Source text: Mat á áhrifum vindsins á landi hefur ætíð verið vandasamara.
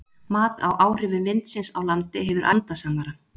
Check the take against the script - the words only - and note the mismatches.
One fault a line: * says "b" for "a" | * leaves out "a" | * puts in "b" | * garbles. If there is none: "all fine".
* leaves out "ætíð verið"